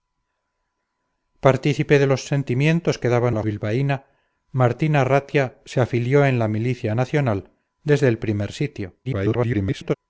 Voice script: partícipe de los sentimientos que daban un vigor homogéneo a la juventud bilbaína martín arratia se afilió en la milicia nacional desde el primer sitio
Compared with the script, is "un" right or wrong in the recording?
wrong